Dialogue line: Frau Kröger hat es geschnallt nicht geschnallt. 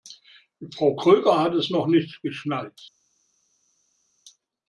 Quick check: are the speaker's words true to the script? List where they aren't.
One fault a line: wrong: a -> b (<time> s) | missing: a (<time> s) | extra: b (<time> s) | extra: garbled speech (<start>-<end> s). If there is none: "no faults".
wrong: geschnallt -> noch (1.7 s)